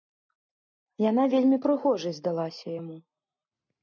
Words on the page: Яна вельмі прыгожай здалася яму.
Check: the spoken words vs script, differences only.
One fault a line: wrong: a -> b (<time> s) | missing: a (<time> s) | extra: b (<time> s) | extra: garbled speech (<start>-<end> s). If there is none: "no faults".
no faults